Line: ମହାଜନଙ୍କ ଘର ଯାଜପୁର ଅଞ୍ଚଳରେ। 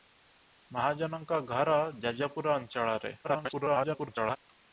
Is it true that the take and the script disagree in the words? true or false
true